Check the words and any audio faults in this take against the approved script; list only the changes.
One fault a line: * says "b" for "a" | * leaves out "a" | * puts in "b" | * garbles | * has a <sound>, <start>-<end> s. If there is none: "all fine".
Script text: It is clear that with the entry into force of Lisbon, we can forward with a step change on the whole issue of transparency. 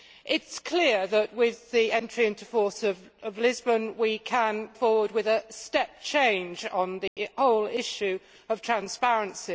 * has a dropout, 7.1-7.2 s